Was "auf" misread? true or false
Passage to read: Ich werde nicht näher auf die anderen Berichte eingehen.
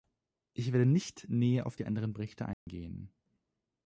false